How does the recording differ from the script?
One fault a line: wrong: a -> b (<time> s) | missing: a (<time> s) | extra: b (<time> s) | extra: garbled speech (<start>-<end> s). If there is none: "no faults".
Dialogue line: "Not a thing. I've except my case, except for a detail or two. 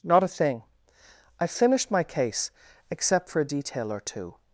wrong: except -> finished (1.5 s)